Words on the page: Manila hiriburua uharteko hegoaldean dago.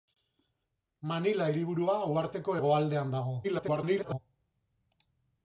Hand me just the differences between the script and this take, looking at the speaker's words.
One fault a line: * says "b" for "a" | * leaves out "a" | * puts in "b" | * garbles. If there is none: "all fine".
* garbles